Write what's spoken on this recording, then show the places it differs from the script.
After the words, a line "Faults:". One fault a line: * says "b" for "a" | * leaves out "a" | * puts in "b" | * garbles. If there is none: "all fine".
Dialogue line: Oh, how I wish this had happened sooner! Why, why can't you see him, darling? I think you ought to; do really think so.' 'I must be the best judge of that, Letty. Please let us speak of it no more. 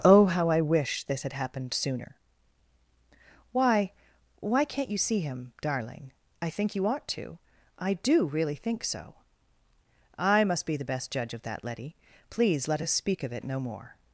Oh, how I wish this had happened sooner! Why, why can't you see him, darling? I think you ought to; I do really think so.' 'I must be the best judge of that, Letty. Please let us speak of it no more.
Faults:
* puts in "I"